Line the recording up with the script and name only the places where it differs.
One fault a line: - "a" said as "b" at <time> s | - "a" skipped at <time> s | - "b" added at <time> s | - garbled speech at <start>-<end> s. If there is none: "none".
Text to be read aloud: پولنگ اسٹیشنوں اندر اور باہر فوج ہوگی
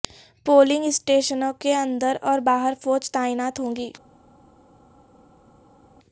- "کے" added at 1.6 s
- "تعینات" added at 3.1 s